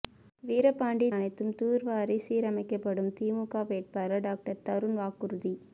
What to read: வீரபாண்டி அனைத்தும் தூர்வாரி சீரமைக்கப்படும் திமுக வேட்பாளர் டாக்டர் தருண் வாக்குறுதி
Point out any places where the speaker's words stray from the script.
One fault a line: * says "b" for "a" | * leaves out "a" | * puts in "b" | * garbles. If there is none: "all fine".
all fine